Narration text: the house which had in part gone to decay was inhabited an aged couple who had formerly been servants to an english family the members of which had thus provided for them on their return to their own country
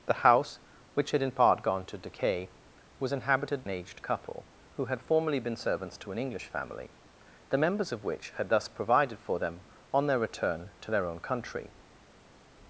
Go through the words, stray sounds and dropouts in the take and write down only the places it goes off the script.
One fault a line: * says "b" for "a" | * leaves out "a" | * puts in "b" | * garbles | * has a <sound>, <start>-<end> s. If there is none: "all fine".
all fine